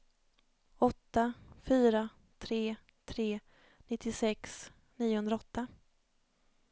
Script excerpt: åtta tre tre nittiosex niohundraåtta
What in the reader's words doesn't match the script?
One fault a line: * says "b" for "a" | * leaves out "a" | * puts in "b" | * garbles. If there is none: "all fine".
* puts in "fyra"